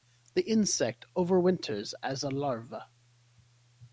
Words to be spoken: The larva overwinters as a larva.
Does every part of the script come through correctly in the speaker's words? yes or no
no